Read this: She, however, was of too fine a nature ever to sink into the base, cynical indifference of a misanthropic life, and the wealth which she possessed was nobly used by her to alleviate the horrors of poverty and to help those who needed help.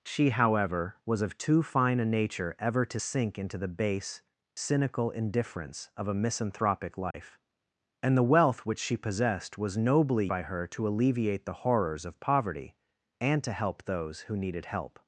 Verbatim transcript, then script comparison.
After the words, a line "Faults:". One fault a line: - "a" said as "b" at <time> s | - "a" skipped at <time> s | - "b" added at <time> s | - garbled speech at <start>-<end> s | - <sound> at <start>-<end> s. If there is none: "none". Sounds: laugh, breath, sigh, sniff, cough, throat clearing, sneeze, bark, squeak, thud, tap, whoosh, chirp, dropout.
She, however, was of too fine a nature ever to sink into the base, cynical indifference of a misanthropic life, and the wealth which she possessed was nobly by her to alleviate the horrors of poverty and to help those who needed help.
Faults:
- dropout at 7.1-7.1 s
- "used" skipped at 10.3 s